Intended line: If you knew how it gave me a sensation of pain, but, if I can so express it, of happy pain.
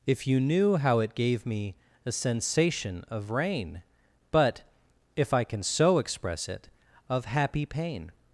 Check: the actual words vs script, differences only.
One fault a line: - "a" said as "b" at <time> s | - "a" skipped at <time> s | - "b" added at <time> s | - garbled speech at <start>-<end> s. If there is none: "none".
- "pain" said as "rain" at 3.3 s